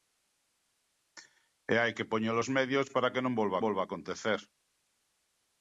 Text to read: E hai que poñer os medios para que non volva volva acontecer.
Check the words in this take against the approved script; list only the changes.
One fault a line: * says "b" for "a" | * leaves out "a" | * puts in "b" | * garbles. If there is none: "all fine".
all fine